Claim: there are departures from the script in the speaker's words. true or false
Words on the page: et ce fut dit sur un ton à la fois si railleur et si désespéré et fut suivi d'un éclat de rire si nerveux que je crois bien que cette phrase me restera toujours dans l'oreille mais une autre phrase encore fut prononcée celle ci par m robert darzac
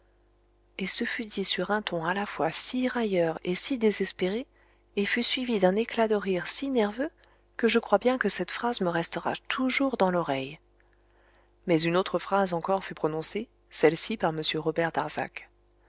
false